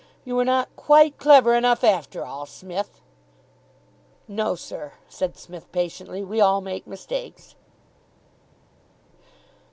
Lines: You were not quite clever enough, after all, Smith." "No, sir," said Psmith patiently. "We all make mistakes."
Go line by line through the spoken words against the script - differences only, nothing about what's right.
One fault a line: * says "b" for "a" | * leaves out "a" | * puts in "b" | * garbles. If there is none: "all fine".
all fine